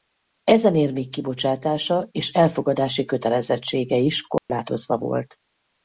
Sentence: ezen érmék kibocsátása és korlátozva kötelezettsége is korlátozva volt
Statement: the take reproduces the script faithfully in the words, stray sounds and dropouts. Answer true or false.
false